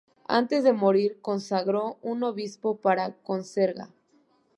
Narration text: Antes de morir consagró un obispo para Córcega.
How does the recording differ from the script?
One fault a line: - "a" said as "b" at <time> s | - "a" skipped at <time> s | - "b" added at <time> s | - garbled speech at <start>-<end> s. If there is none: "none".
none